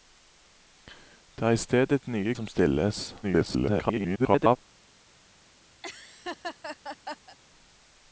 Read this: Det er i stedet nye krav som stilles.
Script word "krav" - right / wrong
wrong